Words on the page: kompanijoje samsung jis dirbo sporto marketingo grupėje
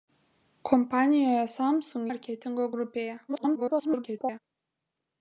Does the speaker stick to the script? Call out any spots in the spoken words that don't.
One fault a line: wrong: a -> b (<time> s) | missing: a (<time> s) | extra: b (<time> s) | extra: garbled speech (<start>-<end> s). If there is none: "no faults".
missing: jis dirbo sporto (2.1 s)
extra: garbled speech (3.3-4.4 s)